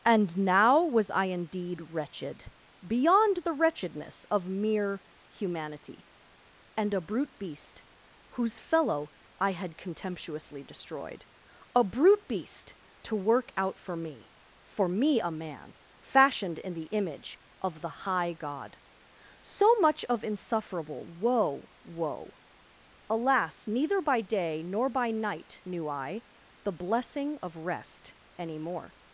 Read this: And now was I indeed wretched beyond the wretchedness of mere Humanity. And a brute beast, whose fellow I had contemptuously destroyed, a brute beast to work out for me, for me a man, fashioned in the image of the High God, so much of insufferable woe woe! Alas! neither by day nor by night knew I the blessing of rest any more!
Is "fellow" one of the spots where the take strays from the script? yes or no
no